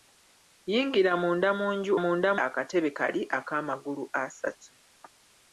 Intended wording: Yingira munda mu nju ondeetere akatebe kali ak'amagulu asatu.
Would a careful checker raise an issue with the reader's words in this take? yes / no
yes